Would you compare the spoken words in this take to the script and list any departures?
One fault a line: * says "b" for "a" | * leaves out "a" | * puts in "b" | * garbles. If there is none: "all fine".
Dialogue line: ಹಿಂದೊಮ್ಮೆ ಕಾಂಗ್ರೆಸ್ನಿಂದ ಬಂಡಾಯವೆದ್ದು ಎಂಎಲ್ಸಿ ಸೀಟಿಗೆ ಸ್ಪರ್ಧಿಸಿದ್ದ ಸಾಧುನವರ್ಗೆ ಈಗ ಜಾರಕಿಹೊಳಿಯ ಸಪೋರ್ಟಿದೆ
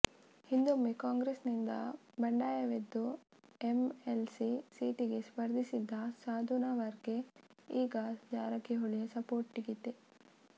all fine